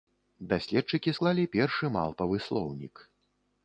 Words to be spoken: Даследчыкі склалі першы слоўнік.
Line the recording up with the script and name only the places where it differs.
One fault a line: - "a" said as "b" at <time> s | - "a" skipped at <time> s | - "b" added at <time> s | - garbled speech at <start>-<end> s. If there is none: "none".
- "малпавы" added at 2.0 s